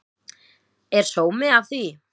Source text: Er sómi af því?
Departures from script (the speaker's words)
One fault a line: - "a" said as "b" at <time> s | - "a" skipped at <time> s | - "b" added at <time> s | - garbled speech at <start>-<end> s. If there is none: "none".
none